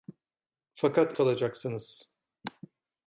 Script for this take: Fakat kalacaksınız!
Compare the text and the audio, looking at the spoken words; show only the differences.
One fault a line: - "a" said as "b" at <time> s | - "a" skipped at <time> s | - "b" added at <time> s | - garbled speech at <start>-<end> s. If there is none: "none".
none